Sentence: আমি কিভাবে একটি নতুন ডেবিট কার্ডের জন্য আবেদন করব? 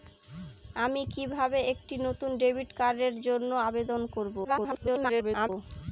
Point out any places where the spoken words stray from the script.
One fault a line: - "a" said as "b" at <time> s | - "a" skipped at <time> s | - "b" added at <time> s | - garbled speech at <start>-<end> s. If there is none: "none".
- garbled speech at 4.4-5.5 s